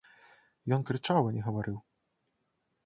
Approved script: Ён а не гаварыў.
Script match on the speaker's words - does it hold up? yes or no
no